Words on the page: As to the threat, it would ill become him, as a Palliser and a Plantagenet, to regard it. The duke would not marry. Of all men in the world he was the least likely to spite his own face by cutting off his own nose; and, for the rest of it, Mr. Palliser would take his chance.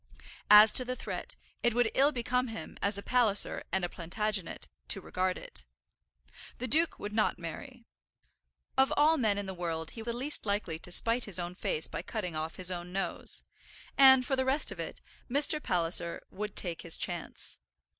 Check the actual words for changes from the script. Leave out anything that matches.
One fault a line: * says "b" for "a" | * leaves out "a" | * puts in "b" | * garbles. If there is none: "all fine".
* leaves out "was"